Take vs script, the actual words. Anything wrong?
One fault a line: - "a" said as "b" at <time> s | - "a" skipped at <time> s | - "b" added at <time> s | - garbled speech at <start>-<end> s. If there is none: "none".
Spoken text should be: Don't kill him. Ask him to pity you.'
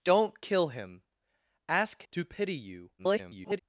- "him" skipped at 2.0 s
- garbled speech at 3.0-3.6 s